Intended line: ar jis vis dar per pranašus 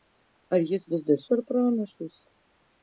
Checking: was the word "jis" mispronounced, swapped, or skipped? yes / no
no